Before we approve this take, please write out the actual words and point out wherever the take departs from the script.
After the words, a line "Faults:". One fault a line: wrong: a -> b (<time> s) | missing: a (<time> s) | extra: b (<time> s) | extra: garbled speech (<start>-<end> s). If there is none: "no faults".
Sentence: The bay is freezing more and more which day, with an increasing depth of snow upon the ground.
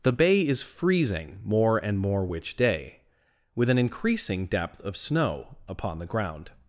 The bay is freezing more and more which day, with an increasing depth of snow upon the ground.
Faults:
no faults